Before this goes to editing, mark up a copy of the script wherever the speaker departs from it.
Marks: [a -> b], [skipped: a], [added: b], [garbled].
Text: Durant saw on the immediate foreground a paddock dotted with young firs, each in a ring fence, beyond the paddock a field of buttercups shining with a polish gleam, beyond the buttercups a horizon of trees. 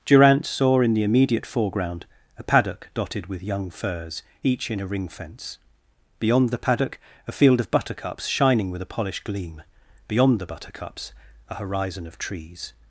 Durant saw [on -> in] the immediate foreground a paddock dotted with young firs, each in a ring fence, beyond the paddock a field of buttercups shining with a [polish -> polished] gleam, beyond the buttercups a horizon of trees.